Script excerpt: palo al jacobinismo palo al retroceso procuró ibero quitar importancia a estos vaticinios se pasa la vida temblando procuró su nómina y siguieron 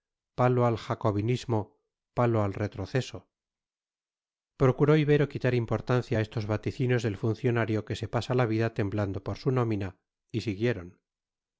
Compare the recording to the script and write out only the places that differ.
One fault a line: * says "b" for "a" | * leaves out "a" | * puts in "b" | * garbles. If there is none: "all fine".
* puts in "del funcionario que"
* says "por" for "procuró"